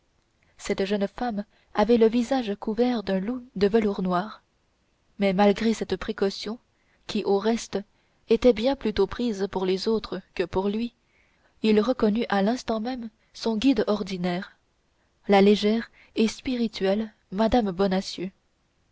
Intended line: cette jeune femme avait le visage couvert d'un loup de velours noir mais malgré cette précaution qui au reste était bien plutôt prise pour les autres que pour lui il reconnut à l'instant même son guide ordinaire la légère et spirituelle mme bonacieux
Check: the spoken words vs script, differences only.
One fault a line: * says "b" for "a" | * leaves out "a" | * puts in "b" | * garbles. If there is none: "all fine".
all fine